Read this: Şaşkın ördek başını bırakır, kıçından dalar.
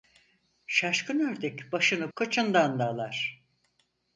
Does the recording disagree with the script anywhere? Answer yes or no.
yes